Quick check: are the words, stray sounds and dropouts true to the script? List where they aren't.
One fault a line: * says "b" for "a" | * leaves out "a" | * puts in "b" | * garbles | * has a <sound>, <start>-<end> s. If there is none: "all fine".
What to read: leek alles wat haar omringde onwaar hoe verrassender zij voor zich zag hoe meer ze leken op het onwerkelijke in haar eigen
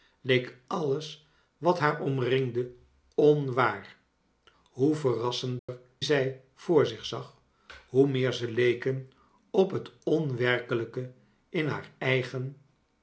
* has a dropout, 5.6-5.7 s